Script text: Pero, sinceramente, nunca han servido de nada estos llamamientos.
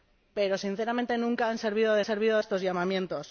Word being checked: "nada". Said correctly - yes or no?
no